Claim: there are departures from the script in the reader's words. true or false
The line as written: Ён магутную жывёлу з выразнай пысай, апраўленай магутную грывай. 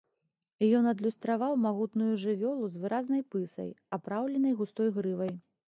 true